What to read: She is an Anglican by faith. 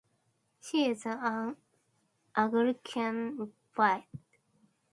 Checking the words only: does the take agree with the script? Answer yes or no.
no